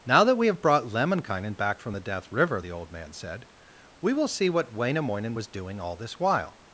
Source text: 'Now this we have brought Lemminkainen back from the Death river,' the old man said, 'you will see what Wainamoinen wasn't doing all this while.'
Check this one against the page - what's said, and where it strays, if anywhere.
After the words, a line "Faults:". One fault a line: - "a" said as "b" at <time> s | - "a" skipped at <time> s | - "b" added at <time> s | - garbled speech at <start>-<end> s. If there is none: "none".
'Now that we have brought Lemminkainen back from the Death river,' the old man said, 'we will see what Wainamoinen was doing all this while.'
Faults:
- "this" said as "that" at 0.2 s
- "you" said as "we" at 4.0 s
- "wasn't" said as "was" at 5.3 s